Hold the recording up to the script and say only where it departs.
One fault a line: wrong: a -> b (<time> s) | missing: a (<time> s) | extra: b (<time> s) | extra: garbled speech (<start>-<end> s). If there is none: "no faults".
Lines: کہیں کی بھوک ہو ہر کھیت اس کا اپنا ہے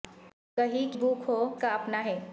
missing: کی (0.9 s)
missing: ہر کھیت اس (1.4 s)